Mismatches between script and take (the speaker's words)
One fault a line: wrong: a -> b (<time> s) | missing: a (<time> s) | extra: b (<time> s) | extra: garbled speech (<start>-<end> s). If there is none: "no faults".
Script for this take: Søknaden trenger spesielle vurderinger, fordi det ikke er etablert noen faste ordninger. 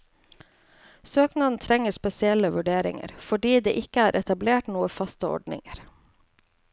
no faults